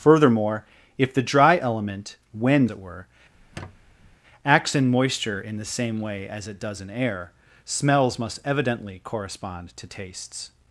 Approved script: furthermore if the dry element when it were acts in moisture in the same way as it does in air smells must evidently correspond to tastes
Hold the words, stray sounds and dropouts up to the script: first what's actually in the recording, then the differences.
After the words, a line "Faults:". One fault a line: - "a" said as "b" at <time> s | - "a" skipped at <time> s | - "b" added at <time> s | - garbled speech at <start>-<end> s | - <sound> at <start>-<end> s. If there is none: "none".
furthermore if the dry element when it were acts in moisture in the same way as it does in air smells must evidently correspond to tastes
Faults:
- squeak at 3.3-4.2 s